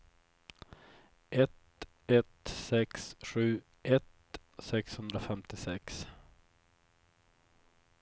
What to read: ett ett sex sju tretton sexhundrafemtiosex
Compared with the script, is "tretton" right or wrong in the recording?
wrong